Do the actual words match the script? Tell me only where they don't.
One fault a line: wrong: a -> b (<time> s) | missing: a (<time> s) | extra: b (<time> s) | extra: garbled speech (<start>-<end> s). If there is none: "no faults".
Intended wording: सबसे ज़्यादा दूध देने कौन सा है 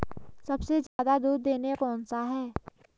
no faults